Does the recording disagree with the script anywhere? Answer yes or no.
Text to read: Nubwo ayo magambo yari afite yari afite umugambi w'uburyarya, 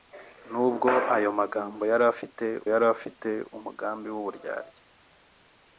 no